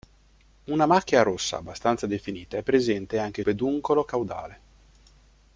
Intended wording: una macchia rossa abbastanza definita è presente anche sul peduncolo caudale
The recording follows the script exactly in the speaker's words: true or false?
false